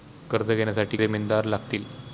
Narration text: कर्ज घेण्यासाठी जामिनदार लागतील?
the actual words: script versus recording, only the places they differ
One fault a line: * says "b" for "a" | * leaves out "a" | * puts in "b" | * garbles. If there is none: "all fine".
all fine